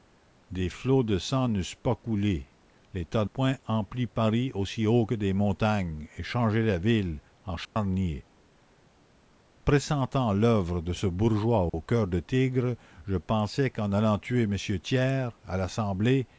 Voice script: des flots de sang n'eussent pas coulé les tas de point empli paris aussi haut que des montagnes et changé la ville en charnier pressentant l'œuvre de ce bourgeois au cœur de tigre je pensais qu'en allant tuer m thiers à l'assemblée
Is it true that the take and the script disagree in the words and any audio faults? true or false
true